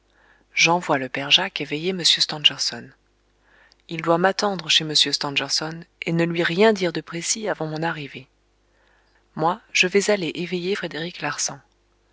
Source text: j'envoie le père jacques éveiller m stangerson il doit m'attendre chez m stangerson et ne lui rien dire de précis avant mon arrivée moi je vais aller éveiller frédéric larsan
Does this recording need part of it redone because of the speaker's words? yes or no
no